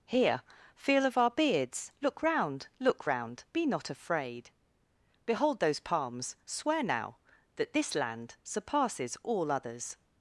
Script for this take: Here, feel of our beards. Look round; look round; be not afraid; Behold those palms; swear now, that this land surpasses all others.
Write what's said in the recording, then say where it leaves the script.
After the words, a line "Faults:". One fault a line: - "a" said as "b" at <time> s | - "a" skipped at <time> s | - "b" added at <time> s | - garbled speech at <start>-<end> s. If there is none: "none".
Here, feel of our beards. Look round; look round; be not afraid; Behold those palms; swear now, that this land surpasses all others.
Faults:
none